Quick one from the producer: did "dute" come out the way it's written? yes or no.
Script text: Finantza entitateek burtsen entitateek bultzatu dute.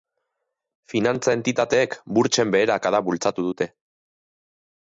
yes